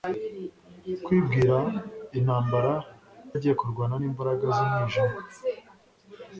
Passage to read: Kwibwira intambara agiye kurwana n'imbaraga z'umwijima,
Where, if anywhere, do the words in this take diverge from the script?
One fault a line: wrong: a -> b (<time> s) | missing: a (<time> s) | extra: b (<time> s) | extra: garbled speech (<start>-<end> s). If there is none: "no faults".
no faults